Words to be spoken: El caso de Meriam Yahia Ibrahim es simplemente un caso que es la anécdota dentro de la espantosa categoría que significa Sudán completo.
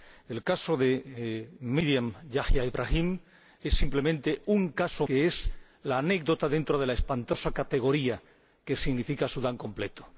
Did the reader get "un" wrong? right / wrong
right